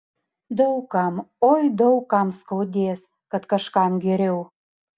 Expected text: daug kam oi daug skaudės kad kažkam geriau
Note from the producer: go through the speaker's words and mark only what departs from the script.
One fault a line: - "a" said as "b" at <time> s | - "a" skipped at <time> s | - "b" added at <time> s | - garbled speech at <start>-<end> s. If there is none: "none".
- "kam" added at 2.1 s